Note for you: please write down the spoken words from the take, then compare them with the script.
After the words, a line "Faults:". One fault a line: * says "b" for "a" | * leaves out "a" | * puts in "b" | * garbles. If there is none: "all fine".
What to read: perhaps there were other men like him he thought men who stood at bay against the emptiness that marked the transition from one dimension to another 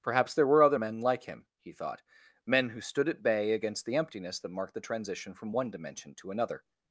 perhaps there were other men like him he thought men who stood at bay against the emptiness that marked the transition from one dimension to another
Faults:
all fine